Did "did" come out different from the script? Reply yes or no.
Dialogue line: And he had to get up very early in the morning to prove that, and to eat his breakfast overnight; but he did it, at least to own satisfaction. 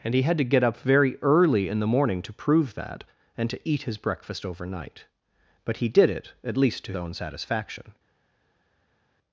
no